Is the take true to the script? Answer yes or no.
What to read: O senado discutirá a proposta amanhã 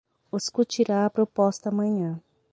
no